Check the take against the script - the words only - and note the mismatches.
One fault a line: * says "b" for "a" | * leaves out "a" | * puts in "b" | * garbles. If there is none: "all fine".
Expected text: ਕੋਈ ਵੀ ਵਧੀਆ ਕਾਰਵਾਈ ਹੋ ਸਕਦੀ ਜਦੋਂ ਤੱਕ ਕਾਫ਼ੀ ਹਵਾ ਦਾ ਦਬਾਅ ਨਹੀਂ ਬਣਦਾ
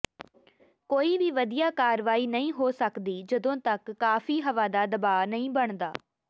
* puts in "ਨਹੀਂ"